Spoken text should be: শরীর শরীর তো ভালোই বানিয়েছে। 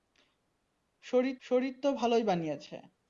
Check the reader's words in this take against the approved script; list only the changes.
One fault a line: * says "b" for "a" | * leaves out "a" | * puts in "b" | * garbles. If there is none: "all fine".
all fine